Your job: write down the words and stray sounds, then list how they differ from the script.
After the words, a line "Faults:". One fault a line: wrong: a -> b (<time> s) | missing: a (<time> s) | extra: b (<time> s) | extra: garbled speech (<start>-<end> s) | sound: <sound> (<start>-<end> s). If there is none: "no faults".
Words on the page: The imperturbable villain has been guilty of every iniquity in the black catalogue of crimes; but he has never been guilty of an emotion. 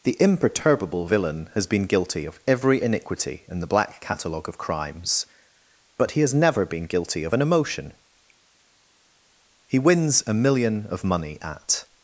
The imperturbable villain has been guilty of every iniquity in the black catalogue of crimes; but he has never been guilty of an emotion. He wins a million of money at
Faults:
extra: He wins a million of money at (9.7 s)